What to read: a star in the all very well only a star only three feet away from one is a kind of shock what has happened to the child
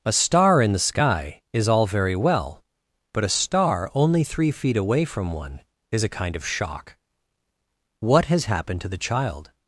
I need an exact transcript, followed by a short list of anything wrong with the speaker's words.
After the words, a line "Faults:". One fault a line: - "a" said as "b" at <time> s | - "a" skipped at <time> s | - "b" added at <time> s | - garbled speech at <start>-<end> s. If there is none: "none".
a star in the sky is all very well but a star only three feet away from one is a kind of shock what has happened to the child
Faults:
- "sky is" added at 0.8 s
- "only" said as "but" at 3.1 s